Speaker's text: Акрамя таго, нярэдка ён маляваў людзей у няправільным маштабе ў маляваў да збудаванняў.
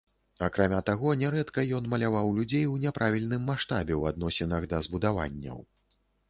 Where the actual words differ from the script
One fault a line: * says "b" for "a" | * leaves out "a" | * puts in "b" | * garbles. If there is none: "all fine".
* says "адносінах" for "маляваў"